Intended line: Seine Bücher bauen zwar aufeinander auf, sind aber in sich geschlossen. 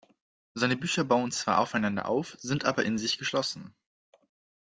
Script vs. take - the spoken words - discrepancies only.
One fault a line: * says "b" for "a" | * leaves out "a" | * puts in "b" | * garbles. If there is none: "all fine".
all fine